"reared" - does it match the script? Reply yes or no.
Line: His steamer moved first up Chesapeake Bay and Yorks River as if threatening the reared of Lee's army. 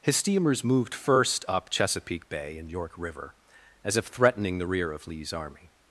no